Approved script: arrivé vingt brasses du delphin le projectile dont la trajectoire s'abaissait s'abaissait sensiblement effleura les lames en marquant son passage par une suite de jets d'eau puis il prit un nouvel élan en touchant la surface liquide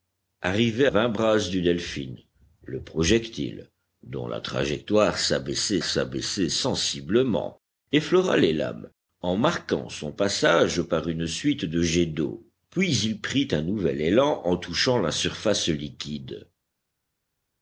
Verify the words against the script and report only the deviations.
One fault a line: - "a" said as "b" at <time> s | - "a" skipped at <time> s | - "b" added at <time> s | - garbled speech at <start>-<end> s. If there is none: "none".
none